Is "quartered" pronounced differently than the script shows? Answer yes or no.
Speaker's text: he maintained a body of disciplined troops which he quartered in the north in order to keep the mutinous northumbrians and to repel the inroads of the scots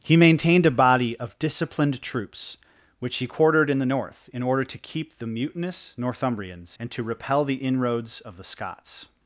no